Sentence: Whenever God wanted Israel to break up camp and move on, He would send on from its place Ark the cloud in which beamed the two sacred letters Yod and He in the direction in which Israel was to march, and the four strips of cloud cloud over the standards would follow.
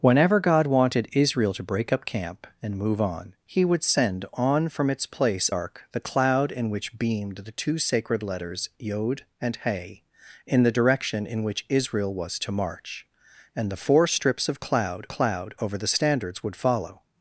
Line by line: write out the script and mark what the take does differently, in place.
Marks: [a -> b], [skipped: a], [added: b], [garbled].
Whenever God wanted Israel to break up camp and move on, He would send on from its place Ark the cloud in which beamed the two sacred letters Yod and He in the direction in which Israel was to march, and the four strips of cloud cloud over the standards would follow.